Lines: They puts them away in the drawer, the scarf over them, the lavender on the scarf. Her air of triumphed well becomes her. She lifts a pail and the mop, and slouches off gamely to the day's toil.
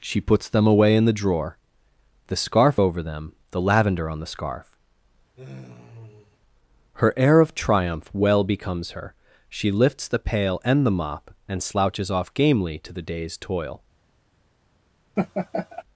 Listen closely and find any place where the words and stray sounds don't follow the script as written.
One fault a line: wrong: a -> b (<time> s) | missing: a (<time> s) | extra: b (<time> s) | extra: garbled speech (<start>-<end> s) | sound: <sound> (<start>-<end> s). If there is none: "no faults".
wrong: They -> She (0.0 s)
sound: sigh (5.4-6.4 s)
wrong: triumphed -> triumph (7.5 s)
wrong: a -> the (10.1 s)
sound: laugh (15.2-15.8 s)